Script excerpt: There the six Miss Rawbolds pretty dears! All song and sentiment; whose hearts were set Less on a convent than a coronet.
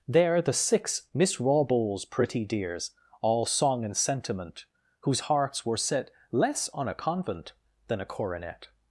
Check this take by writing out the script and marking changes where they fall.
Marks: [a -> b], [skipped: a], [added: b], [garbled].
There the six Miss Rawbolds pretty dears! All song and sentiment; whose hearts were set Less on a convent than a coronet.